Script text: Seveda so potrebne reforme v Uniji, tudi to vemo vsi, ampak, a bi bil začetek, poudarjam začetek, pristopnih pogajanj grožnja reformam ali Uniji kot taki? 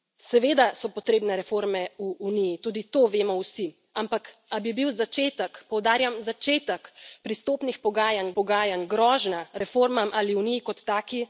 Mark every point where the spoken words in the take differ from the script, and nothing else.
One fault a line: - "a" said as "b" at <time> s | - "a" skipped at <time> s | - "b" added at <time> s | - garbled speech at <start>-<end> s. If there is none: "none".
- "pogajanj" added at 8.3 s